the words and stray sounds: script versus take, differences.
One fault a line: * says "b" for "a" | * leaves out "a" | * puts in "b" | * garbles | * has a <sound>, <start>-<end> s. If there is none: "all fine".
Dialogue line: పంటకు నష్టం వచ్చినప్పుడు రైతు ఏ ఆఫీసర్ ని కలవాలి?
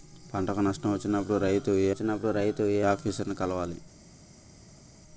* puts in "వచ్చినప్పుడు రైతు ఏ"